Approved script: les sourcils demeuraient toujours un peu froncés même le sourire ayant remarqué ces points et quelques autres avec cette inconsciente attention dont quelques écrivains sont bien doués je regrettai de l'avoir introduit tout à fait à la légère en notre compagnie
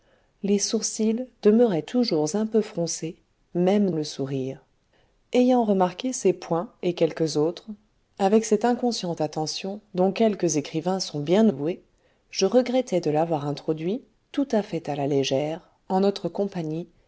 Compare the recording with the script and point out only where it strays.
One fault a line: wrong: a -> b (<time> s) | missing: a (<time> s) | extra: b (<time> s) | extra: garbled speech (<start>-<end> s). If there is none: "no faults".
no faults